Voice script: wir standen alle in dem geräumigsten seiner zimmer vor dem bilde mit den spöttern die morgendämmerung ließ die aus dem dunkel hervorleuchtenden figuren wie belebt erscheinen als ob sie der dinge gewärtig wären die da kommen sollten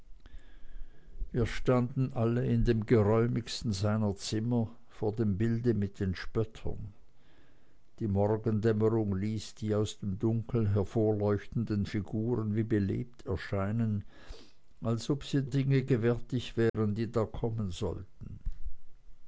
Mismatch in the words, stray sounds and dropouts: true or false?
true